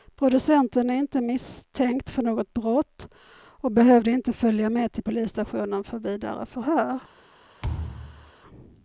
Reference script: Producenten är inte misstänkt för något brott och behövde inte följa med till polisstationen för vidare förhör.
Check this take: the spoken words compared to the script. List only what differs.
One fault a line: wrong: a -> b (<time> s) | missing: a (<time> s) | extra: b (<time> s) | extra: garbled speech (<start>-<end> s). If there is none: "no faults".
no faults